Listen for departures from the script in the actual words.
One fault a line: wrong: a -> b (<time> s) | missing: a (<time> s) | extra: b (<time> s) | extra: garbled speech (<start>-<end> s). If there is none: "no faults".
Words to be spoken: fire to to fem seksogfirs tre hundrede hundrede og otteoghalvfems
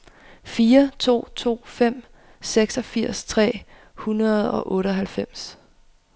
missing: hundrede (4.5 s)